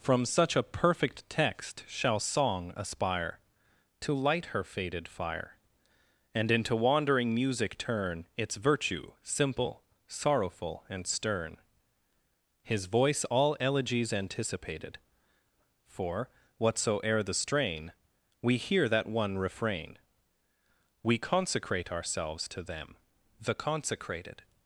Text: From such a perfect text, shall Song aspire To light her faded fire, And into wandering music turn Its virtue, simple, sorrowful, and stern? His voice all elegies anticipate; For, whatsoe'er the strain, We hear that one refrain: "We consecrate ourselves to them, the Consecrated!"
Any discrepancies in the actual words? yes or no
yes